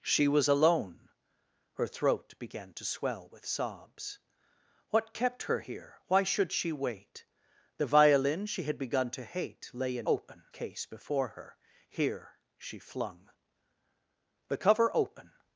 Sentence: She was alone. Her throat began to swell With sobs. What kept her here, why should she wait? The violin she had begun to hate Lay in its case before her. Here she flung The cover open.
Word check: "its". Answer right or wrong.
wrong